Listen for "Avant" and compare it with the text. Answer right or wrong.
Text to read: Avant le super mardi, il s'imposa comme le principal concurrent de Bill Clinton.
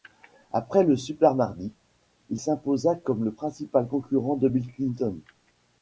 wrong